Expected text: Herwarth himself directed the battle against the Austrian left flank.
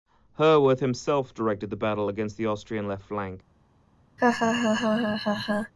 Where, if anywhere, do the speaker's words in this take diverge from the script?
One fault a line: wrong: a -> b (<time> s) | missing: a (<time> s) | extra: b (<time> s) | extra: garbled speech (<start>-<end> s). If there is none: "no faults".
no faults